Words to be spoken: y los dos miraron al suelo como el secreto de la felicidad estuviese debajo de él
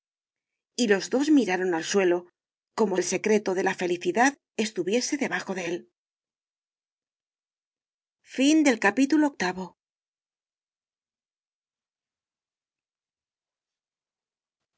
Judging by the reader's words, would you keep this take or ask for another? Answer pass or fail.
pass